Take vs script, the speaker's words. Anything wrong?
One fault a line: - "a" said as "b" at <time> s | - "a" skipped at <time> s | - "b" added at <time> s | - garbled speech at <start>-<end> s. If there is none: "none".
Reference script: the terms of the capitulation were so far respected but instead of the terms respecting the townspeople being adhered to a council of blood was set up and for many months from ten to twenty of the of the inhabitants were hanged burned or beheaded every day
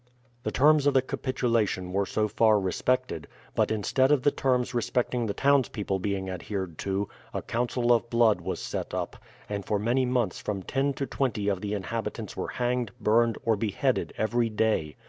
- "of the" skipped at 11.7 s